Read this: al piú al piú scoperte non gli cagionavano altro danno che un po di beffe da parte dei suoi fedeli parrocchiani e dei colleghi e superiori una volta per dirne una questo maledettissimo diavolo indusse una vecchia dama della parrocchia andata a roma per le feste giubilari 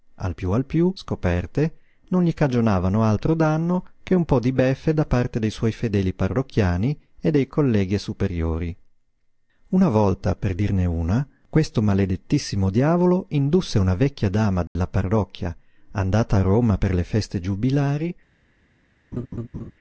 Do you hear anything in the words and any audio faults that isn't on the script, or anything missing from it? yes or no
yes